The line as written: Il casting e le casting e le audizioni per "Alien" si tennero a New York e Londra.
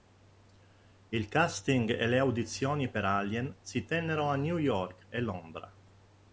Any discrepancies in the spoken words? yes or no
yes